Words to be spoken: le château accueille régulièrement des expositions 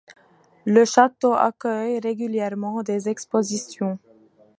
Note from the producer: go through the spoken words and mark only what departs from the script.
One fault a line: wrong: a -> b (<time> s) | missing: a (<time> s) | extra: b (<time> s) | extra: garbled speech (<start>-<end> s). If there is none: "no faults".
no faults